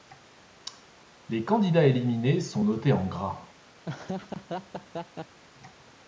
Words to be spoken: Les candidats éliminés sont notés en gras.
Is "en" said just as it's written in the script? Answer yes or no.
yes